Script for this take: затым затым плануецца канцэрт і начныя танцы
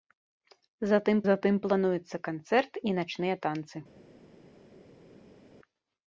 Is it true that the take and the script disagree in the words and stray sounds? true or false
false